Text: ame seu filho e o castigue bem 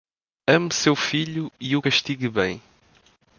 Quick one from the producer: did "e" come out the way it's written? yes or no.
yes